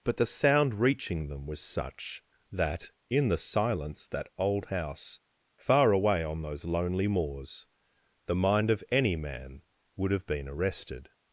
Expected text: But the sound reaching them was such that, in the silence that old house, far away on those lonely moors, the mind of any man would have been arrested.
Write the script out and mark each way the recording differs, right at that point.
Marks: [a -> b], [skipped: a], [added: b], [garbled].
But the sound reaching them was such that, in the silence that old house, far away on those lonely moors, the mind of any man would have been arrested.